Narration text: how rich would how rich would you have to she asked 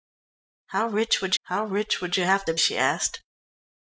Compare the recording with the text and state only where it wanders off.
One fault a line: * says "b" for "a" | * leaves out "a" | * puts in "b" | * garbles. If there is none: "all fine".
all fine